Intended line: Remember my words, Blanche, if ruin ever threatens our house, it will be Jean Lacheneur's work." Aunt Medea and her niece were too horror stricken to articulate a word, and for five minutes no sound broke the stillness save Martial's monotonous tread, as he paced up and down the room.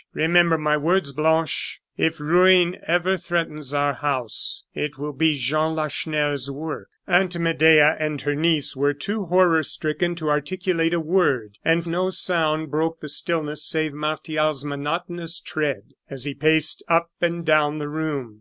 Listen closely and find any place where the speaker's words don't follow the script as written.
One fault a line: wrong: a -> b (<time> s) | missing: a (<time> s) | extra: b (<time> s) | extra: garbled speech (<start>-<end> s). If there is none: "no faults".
missing: for five minutes (11.8 s)